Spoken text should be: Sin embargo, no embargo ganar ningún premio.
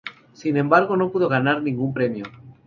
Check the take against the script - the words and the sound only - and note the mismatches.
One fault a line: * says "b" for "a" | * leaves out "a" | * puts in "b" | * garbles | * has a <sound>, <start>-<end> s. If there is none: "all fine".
* says "pudo" for "embargo"